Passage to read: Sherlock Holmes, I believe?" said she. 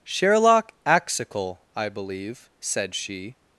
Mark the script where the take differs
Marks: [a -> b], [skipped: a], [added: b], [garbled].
Sherlock [Holmes, -> Axical] I believe?" said she.